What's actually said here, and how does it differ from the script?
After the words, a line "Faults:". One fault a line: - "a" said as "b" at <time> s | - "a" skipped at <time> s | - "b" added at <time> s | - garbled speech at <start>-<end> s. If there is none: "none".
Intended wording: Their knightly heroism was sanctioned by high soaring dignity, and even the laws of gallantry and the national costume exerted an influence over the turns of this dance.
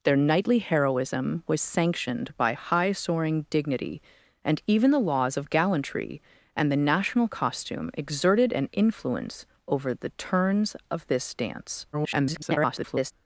Their knightly heroism was sanctioned by high soaring dignity, and even the laws of gallantry and the national costume exerted an influence over the turns of this dance. [garbled]
Faults:
- garbled speech at 11.9-13.1 s